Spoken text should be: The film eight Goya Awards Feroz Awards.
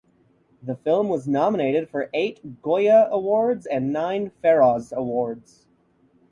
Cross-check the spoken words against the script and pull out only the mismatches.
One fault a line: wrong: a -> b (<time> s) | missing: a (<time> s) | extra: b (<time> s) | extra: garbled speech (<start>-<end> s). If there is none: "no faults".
extra: was nominated for (1.1 s)
extra: and nine (3.7 s)